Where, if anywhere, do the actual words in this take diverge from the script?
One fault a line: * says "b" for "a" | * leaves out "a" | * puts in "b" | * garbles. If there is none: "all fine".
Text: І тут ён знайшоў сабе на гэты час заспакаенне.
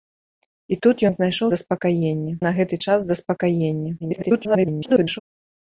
* says "заспакаенне" for "сабе"
* garbles